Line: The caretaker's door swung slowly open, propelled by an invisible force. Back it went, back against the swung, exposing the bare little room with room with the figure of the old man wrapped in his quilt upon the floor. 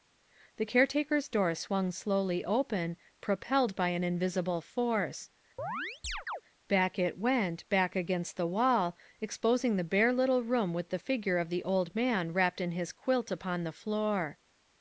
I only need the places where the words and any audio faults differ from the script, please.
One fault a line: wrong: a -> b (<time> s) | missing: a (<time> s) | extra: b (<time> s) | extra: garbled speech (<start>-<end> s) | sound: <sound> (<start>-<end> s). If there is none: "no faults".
sound: chirp (5.6-6.4 s)
wrong: swung -> wall (8.5 s)
missing: room with (10.9 s)